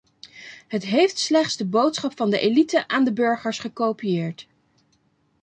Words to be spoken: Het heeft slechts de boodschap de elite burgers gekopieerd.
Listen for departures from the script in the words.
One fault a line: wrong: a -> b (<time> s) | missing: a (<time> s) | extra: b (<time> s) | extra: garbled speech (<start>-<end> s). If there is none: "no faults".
extra: van (2.2 s)
extra: aan de (2.9 s)